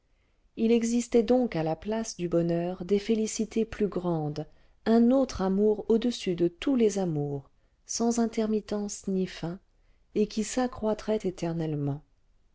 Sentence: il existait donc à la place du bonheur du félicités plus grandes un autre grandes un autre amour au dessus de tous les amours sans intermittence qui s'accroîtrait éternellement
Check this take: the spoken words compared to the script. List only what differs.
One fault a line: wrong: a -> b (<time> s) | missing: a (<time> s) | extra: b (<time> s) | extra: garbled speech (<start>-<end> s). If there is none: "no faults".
wrong: du -> des (2.8 s)
missing: grandes un autre (5.4 s)
extra: ni fin et (9.1 s)